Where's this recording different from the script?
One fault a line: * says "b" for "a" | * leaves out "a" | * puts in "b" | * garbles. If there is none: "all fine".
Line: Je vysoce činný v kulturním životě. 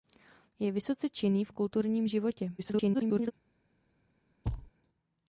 * garbles